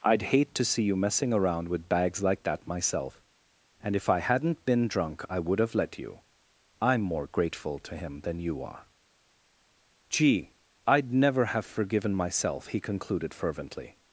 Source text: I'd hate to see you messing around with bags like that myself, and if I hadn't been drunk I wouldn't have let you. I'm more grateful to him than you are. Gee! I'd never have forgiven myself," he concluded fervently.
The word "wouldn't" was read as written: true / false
false